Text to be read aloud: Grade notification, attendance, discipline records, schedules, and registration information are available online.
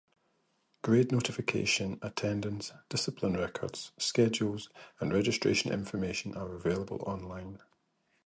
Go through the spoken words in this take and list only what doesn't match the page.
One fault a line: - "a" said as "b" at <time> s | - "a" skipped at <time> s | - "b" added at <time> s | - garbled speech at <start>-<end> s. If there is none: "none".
none